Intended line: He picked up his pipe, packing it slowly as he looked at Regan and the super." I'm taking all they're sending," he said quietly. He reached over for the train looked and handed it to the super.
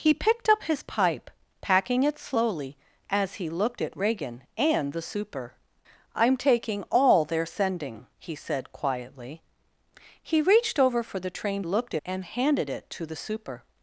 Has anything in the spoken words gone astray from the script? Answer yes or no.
no